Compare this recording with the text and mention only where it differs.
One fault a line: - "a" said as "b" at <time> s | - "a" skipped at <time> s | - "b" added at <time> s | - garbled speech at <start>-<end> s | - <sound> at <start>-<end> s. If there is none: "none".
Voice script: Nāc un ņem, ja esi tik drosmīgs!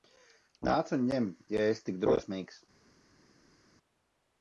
none